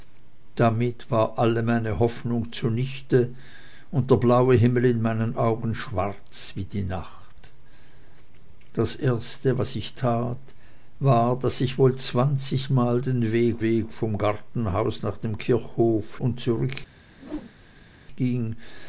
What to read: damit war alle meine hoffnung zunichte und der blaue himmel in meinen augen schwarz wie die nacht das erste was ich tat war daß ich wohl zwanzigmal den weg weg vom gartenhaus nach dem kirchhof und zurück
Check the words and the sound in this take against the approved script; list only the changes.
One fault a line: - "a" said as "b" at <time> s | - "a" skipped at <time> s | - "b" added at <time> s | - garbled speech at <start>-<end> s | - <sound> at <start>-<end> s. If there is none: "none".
- whoosh at 17.1-17.9 s